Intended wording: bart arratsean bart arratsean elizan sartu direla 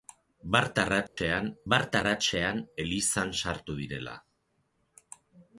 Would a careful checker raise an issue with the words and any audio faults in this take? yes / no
yes